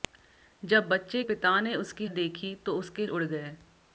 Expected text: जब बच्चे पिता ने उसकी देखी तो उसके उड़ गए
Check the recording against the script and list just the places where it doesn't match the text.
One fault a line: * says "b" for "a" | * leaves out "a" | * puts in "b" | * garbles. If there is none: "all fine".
all fine